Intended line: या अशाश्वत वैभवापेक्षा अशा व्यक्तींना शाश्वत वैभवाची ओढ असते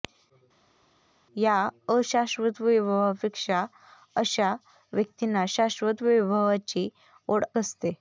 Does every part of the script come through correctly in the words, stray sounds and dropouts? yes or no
yes